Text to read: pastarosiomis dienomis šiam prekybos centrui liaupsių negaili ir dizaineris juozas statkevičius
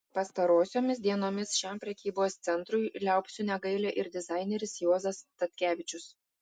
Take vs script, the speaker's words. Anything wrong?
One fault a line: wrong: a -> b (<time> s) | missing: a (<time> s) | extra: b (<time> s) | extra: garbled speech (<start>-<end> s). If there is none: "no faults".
no faults